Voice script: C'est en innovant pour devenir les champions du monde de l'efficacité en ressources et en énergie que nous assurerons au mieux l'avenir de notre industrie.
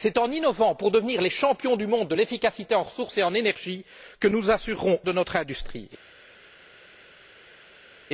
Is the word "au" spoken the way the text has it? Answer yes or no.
no